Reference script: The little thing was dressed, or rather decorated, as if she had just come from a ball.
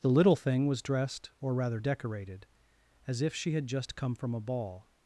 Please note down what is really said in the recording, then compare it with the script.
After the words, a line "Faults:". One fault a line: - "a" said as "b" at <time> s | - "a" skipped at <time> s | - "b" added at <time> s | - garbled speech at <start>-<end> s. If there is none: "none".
The little thing was dressed, or rather decorated, as if she had just come from a ball.
Faults:
none